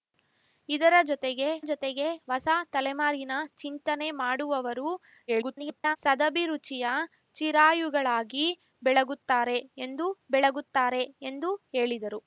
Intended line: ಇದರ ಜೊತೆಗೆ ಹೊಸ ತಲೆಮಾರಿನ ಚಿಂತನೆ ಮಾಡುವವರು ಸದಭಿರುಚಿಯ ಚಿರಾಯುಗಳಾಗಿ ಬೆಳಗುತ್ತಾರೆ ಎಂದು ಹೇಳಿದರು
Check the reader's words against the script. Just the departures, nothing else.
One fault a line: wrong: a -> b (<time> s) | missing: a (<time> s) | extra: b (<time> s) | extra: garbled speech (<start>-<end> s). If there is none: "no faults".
extra: ಜೊತೆಗೆ (1.6 s)
extra: garbled speech (5.3-6.0 s)
extra: ಬೆಳಗುತ್ತಾರೆ ಎಂದು (10.3 s)